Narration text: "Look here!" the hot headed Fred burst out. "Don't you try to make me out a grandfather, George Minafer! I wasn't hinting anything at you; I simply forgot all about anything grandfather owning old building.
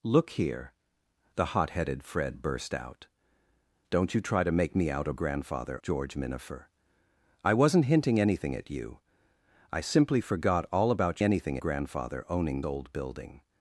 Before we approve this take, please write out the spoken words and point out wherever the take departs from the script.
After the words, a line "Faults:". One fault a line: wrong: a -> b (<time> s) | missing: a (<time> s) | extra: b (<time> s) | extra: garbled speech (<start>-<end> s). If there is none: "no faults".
"Look here!" the hot headed Fred burst out. "Don't you try to make me out a grandfather, George Minafer! I wasn't hinting anything at you; I simply forgot all about anything grandfather owning old building.
Faults:
no faults